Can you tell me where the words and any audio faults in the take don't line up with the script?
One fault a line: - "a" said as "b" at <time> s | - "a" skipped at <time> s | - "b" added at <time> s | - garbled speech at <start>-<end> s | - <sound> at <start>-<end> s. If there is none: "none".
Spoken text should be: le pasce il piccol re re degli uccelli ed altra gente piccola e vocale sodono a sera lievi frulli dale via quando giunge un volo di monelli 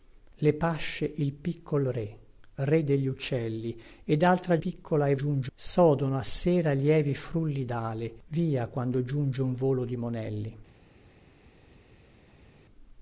- "gente" skipped at 4.6 s
- "vocale" said as "giunge" at 5.1 s